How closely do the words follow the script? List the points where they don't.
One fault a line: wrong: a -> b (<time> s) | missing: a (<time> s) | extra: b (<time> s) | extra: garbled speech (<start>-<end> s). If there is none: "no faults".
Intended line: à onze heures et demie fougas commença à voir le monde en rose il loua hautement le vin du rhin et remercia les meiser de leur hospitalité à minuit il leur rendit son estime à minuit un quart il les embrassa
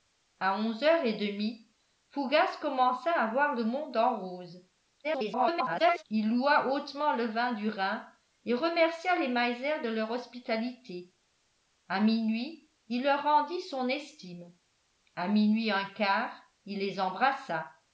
extra: garbled speech (5.0-6.0 s)